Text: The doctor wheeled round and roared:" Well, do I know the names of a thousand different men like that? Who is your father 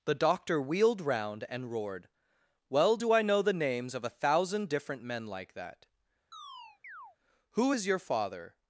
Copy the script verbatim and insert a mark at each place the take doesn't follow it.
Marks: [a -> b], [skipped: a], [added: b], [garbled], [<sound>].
The doctor wheeled round and roared:" Well, do I know the names of a thousand different men like that? [chirp] Who is your father